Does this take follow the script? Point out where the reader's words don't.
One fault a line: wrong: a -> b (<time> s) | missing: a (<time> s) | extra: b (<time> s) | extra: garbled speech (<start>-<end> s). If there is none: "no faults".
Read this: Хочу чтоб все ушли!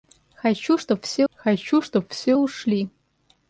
extra: хочу чтоб все (1.3 s)